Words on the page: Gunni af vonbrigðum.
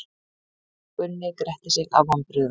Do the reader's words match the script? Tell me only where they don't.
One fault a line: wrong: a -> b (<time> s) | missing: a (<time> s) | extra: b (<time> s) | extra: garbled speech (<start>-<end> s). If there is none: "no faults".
extra: gretti sig (1.4 s)